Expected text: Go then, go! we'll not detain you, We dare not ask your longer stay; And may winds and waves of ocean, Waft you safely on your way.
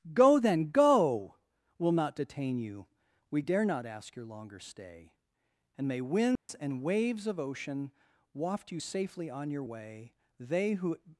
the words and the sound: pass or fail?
fail